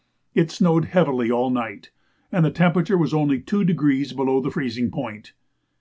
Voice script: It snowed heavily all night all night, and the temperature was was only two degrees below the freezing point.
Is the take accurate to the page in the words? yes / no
no